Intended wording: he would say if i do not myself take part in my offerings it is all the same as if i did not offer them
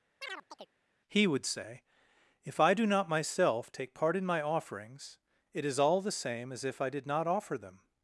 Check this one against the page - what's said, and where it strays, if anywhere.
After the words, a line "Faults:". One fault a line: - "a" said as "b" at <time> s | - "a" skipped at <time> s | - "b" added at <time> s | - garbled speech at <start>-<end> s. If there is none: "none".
he would say if i do not myself take part in my offerings it is all the same as if i did not offer them
Faults:
none